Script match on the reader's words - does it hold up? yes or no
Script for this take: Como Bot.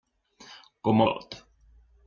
yes